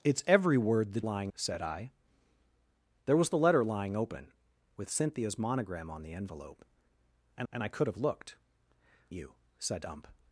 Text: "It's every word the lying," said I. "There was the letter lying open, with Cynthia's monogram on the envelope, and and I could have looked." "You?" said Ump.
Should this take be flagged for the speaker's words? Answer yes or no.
no